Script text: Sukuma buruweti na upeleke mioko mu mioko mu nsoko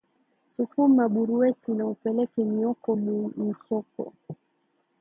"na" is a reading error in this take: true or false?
false